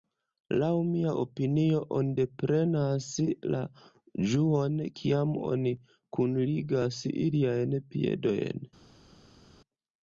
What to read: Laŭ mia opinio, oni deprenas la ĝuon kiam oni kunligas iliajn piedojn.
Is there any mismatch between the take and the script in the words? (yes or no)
no